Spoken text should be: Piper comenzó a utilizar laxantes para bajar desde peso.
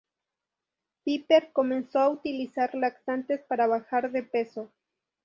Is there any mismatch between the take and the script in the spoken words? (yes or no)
yes